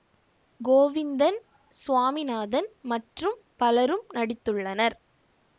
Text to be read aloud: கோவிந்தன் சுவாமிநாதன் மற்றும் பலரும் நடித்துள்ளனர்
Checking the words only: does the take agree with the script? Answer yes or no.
yes